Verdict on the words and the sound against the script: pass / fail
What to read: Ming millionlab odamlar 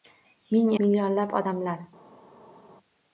pass